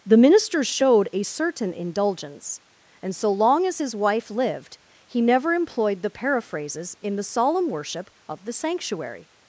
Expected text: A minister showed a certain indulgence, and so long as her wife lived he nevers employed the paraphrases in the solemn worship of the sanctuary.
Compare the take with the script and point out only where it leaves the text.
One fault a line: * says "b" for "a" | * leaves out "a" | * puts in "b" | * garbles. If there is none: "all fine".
* says "The" for "A"
* says "his" for "her"
* says "never" for "nevers"